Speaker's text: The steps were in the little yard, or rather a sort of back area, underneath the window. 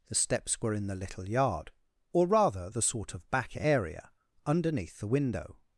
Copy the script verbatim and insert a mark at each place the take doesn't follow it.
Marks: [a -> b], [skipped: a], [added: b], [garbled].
The steps were in the little yard, or rather [a -> the] sort of back area, underneath the window.